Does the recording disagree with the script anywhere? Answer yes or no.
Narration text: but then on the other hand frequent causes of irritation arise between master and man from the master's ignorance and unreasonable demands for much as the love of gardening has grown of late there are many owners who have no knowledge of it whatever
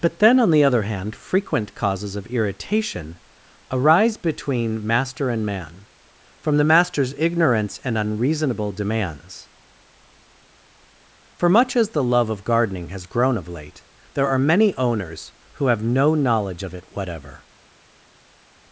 no